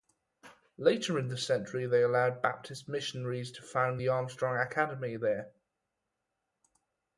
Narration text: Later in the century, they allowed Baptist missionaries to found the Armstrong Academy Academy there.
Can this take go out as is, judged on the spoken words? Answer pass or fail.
fail